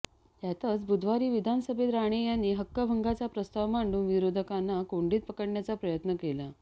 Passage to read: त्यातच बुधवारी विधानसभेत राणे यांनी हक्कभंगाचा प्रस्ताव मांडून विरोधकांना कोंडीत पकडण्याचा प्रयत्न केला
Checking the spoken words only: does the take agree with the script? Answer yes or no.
yes